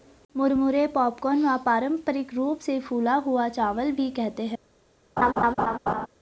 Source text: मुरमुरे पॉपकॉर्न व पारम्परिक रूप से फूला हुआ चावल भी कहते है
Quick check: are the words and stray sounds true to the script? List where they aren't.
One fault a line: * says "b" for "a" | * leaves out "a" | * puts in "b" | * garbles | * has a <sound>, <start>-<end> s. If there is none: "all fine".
* has a laugh, 5.2-6.1 s